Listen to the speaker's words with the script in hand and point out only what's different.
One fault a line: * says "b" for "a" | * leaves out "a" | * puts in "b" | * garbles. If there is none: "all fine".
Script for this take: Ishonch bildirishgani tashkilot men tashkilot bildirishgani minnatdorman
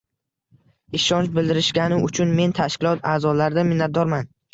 * says "uchun" for "tashkilot"
* says "a'zolaridan" for "bildirishgani"